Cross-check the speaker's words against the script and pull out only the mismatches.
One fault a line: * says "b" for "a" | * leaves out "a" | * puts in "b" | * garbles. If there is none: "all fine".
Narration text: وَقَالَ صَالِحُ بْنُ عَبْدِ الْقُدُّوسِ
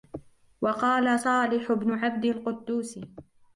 all fine